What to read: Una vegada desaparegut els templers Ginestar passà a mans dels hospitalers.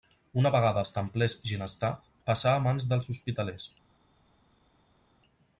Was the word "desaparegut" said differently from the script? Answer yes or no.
yes